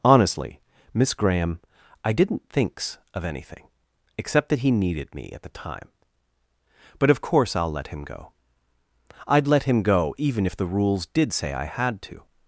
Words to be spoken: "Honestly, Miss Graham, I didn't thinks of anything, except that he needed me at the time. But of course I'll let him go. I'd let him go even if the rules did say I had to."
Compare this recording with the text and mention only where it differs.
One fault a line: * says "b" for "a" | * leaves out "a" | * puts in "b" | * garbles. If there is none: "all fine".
all fine